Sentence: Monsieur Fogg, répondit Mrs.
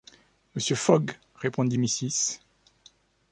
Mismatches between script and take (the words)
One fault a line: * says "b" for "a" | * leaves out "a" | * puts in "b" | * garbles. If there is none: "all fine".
all fine